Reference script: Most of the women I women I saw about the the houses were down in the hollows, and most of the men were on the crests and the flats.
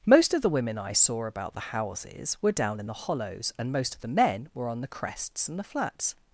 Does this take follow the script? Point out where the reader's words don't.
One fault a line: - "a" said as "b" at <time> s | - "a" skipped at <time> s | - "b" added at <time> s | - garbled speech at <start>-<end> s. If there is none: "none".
- "women I" skipped at 0.9 s
- "the" skipped at 1.7 s